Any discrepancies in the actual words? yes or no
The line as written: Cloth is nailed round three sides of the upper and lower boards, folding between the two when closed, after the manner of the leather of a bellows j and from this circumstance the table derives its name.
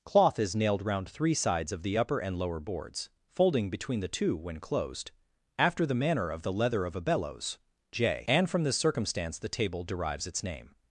no